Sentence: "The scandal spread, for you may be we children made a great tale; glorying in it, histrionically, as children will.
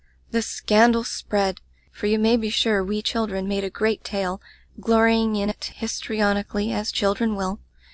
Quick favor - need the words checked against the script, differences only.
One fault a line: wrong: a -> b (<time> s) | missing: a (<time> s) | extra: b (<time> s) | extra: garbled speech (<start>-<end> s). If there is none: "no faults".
extra: sure (2.5 s)